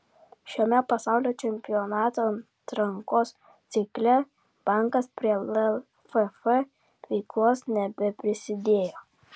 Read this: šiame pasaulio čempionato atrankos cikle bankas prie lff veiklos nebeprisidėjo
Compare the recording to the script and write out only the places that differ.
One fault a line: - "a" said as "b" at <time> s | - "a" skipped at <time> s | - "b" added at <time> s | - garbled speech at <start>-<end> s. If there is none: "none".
none